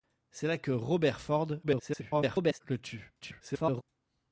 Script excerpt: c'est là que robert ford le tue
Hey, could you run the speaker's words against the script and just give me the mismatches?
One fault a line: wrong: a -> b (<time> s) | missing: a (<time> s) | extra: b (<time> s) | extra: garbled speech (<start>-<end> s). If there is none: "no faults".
extra: garbled speech (1.6-2.6 s)
extra: garbled speech (3.2-3.8 s)